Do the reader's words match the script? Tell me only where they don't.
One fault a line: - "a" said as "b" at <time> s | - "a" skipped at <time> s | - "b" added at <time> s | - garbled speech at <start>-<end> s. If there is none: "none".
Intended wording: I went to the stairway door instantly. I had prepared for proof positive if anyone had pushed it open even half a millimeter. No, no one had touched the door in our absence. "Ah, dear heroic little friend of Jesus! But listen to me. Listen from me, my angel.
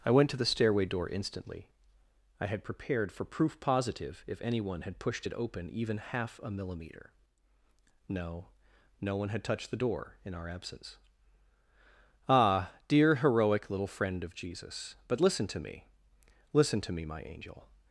- "from" said as "to" at 16.8 s